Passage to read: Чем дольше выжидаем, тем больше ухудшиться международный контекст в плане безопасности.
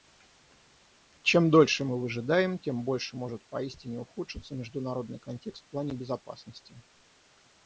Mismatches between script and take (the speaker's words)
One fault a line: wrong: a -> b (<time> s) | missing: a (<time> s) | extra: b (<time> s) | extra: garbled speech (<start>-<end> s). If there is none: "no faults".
extra: мы (1.9 s)
extra: может поистине (3.1 s)